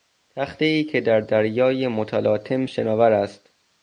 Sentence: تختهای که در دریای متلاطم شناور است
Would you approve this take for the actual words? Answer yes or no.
yes